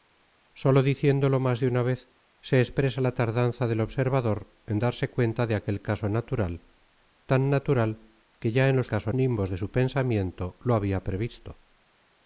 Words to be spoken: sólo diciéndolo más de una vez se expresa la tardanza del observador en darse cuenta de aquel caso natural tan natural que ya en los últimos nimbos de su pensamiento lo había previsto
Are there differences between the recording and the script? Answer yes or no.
yes